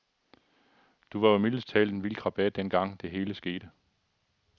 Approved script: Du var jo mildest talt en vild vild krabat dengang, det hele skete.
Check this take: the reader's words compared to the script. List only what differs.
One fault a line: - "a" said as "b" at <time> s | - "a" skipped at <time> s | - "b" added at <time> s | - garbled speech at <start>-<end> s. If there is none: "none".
- "vild" skipped at 2.1 s